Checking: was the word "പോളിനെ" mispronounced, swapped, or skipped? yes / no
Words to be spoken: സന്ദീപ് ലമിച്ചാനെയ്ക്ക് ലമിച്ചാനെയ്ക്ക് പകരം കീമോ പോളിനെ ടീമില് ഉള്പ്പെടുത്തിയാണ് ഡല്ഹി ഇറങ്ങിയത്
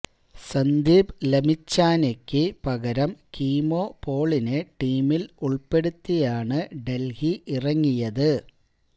no